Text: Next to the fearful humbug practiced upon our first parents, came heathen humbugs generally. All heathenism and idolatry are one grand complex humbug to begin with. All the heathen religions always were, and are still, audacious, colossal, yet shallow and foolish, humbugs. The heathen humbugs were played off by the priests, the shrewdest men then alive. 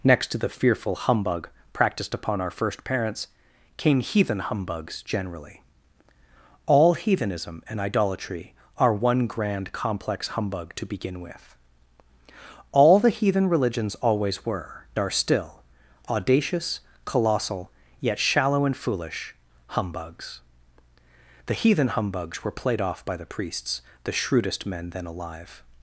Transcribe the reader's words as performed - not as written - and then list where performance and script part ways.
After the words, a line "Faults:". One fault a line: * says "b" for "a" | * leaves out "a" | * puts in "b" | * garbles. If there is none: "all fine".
Next to the fearful humbug practiced upon our first parents, came heathen humbugs generally. All heathenism and idolatry are one grand complex humbug to begin with. All the heathen religions always were, are still, audacious, colossal, yet shallow and foolish, humbugs. The heathen humbugs were played off by the priests, the shrewdest men then alive.
Faults:
* leaves out "and"